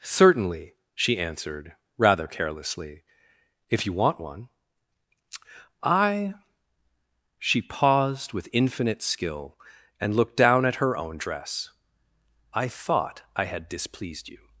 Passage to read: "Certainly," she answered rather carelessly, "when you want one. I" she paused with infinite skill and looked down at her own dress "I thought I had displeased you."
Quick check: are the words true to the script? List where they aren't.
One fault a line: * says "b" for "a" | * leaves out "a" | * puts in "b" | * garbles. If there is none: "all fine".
* says "if" for "when"